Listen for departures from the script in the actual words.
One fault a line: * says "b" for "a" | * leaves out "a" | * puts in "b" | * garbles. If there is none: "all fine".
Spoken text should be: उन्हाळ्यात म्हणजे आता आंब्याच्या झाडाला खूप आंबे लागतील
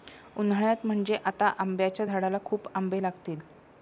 all fine